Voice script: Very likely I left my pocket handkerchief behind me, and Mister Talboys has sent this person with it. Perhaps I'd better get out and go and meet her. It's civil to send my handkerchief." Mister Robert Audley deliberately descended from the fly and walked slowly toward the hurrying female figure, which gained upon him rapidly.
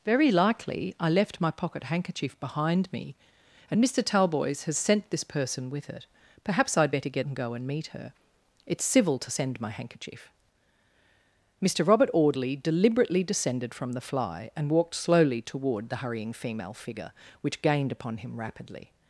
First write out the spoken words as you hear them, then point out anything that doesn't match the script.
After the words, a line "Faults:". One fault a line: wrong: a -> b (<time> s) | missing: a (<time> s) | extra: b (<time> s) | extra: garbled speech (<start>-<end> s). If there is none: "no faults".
Very likely I left my pocket handkerchief behind me, and Mister Talboys has sent this person with it. Perhaps I'd better get and go and meet her. It's civil to send my handkerchief." Mister Robert Audley deliberately descended from the fly and walked slowly toward the hurrying female figure, which gained upon him rapidly.
Faults:
missing: out (7.3 s)